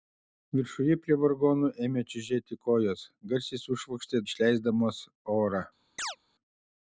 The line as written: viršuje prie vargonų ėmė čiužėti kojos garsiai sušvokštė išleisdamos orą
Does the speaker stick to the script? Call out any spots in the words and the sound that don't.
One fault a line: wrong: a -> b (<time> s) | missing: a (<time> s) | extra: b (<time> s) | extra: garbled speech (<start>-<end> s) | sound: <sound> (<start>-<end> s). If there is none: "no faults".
sound: chirp (6.0-6.2 s)